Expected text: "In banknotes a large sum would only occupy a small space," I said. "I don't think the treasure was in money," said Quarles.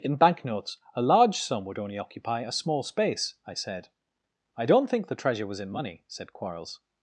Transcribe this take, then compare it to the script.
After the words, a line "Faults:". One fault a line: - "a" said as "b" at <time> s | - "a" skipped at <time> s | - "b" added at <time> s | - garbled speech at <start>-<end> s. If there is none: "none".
"In banknotes a large sum would only occupy a small space," I said. "I don't think the treasure was in money," said Quarles.
Faults:
none